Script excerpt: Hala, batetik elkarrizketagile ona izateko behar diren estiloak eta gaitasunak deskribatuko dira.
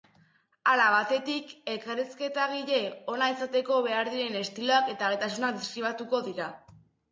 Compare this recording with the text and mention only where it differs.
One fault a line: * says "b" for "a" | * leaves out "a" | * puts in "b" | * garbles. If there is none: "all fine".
all fine